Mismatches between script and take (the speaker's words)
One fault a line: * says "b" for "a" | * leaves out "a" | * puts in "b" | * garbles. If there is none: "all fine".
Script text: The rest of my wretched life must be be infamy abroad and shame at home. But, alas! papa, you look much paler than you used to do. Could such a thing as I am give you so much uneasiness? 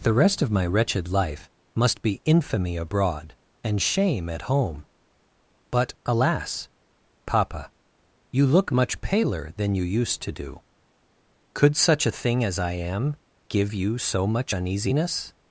* leaves out "be"